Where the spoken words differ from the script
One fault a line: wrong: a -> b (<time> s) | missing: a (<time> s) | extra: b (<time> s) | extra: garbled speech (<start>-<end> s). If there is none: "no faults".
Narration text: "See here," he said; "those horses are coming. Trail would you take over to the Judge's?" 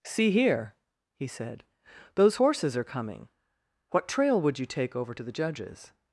extra: What (3.9 s)